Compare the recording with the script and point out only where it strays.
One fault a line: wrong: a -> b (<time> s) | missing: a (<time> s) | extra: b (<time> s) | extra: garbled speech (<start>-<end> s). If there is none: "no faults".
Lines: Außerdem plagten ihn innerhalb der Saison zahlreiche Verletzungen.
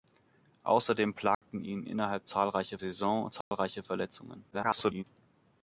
wrong: der -> zahlreiche (2.3 s)
extra: garbled speech (4.5-5.0 s)